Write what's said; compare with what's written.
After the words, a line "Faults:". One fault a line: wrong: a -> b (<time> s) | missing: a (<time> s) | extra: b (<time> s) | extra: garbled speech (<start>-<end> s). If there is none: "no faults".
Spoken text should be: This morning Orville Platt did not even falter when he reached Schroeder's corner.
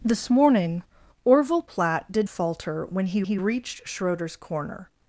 This morning Orville Platt did falter when he he reached Schroeder's corner.
Faults:
missing: not even (2.3 s)
extra: he (3.2 s)